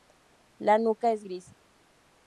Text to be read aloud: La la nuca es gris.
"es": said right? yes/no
yes